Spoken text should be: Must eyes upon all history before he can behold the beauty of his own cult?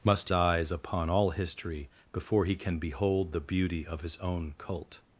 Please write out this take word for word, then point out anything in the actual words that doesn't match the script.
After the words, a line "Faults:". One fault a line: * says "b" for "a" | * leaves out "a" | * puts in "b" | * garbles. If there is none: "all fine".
Must eyes upon all history before he can behold the beauty of his own cult?
Faults:
all fine